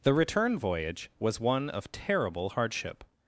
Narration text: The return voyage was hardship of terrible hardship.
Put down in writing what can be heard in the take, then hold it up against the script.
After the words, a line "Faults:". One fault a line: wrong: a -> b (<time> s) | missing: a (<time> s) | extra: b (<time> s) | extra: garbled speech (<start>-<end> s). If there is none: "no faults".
The return voyage was one of terrible hardship.
Faults:
wrong: hardship -> one (1.4 s)